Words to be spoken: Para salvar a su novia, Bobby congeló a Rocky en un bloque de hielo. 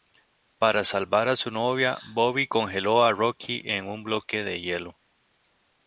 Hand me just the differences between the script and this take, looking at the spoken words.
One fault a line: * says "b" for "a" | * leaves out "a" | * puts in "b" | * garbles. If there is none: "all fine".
all fine